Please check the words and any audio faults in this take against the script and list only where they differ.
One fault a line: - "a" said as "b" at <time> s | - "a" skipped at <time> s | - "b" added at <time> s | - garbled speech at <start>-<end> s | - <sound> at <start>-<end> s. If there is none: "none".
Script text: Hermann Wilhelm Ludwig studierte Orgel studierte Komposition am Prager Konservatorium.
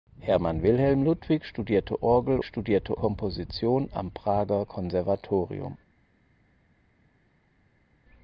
none